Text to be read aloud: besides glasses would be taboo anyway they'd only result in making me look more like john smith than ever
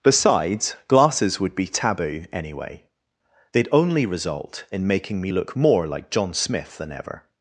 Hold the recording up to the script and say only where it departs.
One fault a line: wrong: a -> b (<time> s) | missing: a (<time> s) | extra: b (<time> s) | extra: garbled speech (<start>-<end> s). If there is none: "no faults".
no faults